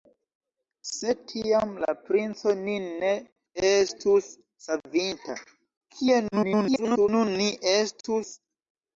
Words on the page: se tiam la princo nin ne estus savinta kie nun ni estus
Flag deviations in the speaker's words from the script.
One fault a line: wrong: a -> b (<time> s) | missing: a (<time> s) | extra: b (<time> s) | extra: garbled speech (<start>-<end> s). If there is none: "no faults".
extra: garbled speech (6.3-7.1 s)